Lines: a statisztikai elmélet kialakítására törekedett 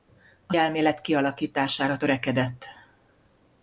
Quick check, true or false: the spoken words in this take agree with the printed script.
false